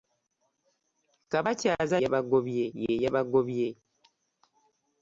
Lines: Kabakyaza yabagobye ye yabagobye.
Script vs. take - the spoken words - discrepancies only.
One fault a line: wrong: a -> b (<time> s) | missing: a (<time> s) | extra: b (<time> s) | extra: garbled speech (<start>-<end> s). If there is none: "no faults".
no faults